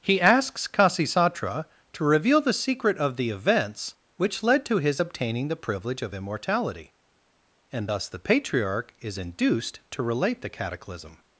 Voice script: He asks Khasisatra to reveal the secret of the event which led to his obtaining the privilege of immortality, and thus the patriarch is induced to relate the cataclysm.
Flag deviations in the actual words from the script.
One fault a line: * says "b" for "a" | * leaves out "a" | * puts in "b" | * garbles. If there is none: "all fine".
* says "events" for "event"